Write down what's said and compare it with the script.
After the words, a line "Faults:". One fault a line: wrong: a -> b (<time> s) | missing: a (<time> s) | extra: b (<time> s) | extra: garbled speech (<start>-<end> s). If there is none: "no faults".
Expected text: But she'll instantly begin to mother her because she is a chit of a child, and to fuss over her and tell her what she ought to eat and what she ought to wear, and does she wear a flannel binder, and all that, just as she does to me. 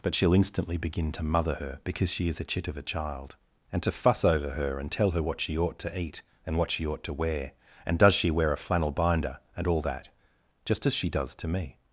But she'll instantly begin to mother her because she is a chit of a child, and to fuss over her and tell her what she ought to eat and what she ought to wear, and does she wear a flannel binder, and all that, just as she does to me.
Faults:
no faults